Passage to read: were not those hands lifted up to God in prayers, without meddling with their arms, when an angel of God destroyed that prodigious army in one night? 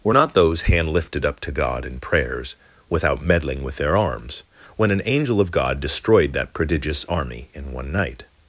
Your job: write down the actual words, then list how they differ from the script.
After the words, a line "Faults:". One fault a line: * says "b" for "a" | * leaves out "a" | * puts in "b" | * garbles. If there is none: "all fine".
were not those hand lifted up to God in prayers, without meddling with their arms, when an angel of God destroyed that prodigious army in one night?
Faults:
* says "hand" for "hands"